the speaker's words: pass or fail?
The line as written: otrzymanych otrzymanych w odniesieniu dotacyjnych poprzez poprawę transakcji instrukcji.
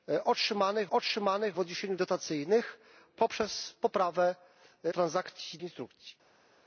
pass